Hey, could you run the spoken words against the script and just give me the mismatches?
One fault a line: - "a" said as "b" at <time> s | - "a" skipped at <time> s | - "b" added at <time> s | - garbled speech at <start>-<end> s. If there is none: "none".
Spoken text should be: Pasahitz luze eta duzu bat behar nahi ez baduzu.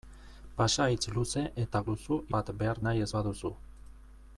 none